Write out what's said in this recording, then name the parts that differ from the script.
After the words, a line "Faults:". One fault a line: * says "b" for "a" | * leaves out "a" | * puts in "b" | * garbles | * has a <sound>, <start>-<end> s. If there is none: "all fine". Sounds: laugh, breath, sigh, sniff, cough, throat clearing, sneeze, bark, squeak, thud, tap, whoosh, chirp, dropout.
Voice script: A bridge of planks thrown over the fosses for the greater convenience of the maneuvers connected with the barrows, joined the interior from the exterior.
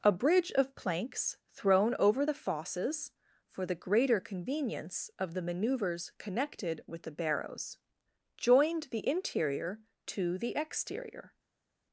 A bridge of planks thrown over the fosses for the greater convenience of the maneuvers connected with the barrows, joined the interior to the exterior.
Faults:
* says "to" for "from"